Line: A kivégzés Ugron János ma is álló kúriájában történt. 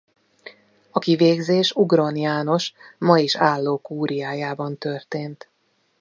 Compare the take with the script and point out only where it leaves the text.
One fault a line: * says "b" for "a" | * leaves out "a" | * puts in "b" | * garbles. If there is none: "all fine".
all fine